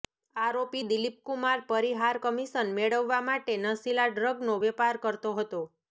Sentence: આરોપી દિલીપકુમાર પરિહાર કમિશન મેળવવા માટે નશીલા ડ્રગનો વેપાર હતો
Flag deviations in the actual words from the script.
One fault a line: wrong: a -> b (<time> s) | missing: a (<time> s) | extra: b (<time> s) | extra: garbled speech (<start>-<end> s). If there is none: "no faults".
extra: કરતો (5.0 s)